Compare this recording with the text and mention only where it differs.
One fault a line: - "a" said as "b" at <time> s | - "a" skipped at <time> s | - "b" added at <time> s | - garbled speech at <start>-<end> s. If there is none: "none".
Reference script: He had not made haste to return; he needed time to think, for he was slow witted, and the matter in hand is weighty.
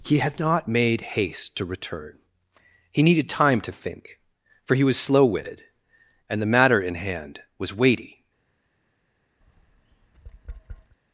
- "is" said as "was" at 7.6 s